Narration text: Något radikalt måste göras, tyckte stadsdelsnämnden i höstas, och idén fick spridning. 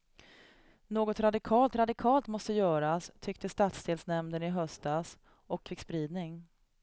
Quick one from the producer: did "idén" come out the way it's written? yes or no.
no